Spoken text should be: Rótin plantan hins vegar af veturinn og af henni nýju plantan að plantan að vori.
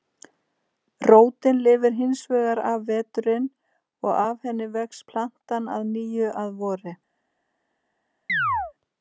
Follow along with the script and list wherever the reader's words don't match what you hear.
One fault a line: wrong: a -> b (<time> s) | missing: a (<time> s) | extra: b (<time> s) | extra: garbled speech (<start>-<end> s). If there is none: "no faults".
wrong: plantan -> lifir (1.7 s)
wrong: nýju -> vex (4.8 s)
wrong: plantan -> nýju (6.0 s)